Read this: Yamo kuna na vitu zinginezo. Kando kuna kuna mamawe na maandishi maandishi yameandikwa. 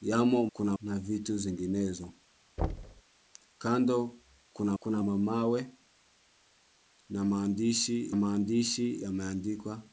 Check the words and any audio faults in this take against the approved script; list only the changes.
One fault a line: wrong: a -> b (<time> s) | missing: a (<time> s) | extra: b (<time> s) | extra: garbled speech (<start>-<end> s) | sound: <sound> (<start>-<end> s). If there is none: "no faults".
sound: thud (2.6-3.0 s)